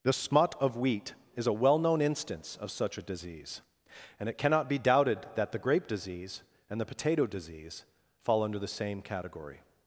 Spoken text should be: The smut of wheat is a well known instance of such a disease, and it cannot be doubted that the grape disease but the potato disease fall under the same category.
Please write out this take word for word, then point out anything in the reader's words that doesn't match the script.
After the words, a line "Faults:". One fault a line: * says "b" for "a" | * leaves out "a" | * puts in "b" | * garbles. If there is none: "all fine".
The smut of wheat is a well known instance of such a disease, and it cannot be doubted that the grape disease and the potato disease fall under the same category.
Faults:
* says "and" for "but"